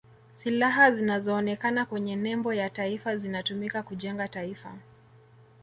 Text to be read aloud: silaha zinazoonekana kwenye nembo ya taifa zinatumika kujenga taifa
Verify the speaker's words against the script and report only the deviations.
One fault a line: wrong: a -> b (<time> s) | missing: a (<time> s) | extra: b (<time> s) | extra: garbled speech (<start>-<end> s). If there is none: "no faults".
no faults